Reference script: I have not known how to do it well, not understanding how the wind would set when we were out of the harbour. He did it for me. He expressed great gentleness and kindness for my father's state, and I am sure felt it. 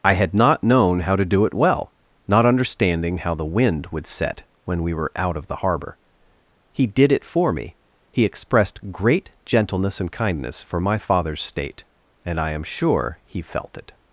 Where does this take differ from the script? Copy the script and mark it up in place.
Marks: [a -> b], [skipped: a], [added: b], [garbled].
I [have -> had] not known how to do it well, not understanding how the wind would set when we were out of the harbour. He did it for me. He expressed great gentleness and kindness for my father's state, and I am sure [added: he] felt it.